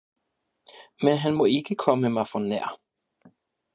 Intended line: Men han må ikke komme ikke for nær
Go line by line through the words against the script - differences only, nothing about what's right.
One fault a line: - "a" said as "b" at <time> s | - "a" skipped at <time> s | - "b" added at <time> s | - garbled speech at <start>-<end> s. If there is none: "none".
- "ikke" said as "mig" at 2.1 s